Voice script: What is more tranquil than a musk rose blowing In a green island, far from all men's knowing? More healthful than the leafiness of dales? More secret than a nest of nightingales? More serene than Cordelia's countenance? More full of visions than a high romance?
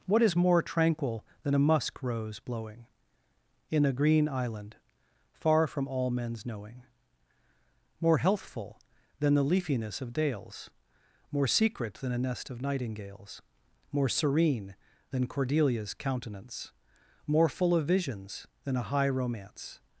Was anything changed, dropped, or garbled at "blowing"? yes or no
no